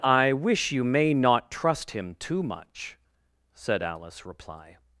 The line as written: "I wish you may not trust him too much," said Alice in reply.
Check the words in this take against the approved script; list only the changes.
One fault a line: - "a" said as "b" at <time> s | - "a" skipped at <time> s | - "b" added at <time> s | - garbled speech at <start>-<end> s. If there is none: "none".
- "in" skipped at 4.2 s